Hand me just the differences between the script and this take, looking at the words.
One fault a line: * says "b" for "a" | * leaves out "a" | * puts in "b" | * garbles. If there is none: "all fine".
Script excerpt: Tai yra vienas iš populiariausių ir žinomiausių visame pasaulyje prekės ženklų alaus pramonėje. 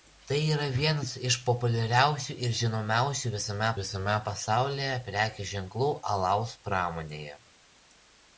* puts in "visame"